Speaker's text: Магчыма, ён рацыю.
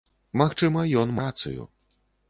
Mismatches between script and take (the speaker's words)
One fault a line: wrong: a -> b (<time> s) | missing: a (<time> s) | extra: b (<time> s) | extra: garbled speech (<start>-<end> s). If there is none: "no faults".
no faults